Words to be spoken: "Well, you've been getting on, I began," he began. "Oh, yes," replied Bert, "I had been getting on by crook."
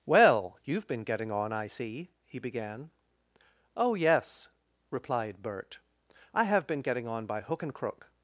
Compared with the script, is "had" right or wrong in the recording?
wrong